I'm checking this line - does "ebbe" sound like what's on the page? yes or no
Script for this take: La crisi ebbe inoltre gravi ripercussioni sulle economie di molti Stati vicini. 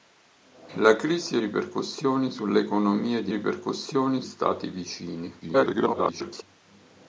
no